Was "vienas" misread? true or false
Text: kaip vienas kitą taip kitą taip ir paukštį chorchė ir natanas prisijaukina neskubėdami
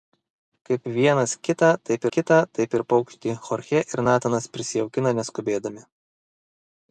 false